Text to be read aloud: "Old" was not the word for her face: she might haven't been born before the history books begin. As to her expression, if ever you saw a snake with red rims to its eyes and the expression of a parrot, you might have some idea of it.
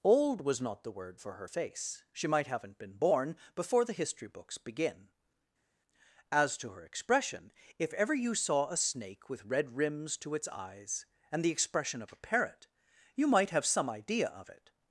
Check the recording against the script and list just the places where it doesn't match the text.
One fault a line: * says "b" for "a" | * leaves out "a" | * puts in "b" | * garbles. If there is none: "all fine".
all fine